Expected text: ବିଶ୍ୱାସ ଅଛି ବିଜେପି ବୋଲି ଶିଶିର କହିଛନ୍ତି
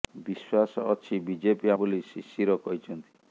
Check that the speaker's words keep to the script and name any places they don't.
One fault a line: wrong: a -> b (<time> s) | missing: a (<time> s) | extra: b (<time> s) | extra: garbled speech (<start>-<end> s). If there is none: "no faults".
no faults